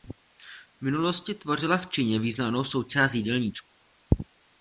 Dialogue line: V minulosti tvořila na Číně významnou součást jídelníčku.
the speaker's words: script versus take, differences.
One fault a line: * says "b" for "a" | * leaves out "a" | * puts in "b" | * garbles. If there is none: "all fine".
* says "v" for "na"